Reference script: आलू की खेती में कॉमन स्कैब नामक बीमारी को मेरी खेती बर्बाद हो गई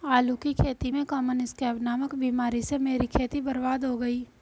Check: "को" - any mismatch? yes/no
yes